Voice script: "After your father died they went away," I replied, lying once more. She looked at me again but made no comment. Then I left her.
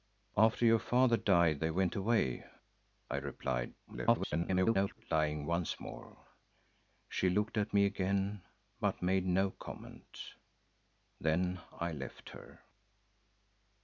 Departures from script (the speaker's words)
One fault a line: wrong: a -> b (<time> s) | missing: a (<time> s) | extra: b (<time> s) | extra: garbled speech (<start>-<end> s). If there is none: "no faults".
extra: garbled speech (3.9-5.0 s)